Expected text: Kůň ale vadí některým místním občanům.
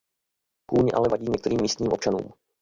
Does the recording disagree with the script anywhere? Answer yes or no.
no